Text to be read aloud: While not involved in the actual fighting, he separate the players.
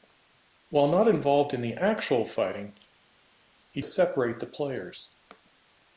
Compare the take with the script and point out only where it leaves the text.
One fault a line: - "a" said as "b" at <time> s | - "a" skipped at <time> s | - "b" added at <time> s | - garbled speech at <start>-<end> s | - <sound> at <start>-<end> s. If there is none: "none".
none